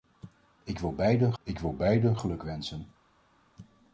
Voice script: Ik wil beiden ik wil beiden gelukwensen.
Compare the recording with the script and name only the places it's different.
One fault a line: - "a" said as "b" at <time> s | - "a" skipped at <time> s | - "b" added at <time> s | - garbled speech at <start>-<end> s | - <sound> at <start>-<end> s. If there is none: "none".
none